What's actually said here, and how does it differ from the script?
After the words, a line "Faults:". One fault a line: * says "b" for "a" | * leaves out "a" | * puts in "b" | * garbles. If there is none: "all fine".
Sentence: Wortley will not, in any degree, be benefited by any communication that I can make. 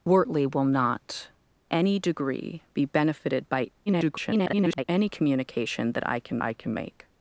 Wortley will not, any degree, be benefited by [garbled] any communication that I can I can make.
Faults:
* leaves out "in"
* garbles
* puts in "I can"